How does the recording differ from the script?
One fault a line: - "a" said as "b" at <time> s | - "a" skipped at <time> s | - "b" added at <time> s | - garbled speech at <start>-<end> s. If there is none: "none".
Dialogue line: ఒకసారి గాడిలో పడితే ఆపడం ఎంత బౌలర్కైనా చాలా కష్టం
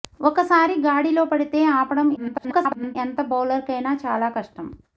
- garbled speech at 2.2-3.0 s